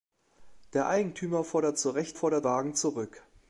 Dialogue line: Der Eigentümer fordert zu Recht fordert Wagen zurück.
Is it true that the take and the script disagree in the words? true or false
false